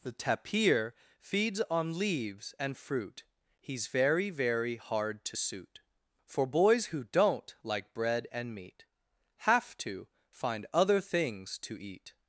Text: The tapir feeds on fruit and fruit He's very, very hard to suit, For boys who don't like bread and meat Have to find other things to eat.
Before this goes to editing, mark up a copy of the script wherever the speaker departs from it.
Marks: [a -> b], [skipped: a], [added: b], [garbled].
The tapir feeds on [fruit -> leaves] and fruit He's very, very hard to suit, For boys who don't like bread and meat Have to find other things to eat.